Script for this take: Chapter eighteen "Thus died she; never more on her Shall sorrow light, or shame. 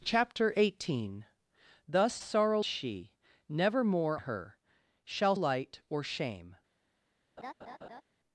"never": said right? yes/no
yes